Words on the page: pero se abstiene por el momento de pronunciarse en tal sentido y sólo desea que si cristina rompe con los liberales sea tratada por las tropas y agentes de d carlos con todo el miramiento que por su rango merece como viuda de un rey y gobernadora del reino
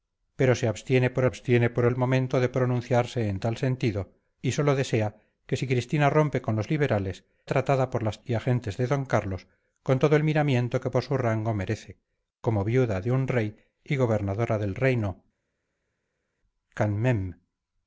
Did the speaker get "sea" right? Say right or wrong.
wrong